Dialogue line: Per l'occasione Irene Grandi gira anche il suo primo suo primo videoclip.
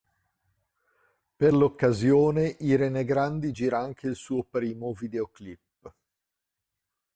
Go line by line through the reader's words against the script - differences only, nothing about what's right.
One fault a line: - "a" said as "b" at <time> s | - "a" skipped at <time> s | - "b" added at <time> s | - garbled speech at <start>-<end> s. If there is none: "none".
- "suo primo" skipped at 4.9 s